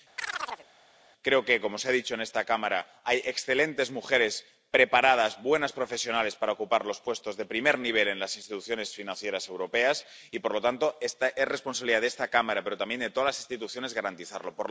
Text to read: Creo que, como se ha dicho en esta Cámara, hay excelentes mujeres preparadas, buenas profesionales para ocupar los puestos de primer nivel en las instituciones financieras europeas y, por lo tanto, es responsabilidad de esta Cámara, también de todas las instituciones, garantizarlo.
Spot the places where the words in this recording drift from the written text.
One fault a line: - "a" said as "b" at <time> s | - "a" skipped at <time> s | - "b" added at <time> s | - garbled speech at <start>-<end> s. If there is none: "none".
- "pero" added at 12.6 s